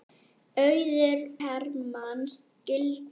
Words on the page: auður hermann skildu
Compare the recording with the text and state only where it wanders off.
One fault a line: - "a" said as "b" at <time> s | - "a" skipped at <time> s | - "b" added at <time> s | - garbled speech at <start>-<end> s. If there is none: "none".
none